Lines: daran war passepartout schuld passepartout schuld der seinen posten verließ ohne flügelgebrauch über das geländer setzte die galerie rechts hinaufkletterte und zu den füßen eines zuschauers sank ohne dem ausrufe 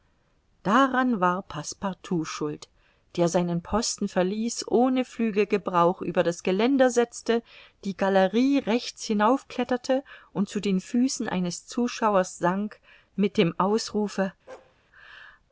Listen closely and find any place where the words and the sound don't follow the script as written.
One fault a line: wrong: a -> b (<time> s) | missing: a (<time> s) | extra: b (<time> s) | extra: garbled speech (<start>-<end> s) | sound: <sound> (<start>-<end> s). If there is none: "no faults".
missing: passepartout schuld (2.7 s)
wrong: ohne -> mit (13.2 s)
sound: bark (14.5-14.8 s)